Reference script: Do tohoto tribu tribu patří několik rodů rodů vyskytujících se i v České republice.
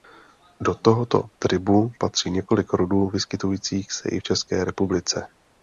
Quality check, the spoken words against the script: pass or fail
fail